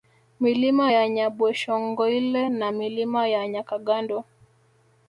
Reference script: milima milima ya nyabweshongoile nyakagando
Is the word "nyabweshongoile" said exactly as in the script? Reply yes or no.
no